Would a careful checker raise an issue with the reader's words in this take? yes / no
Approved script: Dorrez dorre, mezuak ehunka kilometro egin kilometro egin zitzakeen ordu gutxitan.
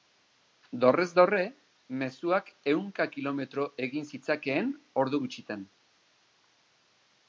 yes